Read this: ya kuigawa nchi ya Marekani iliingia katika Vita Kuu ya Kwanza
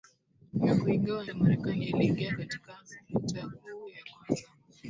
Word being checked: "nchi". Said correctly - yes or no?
no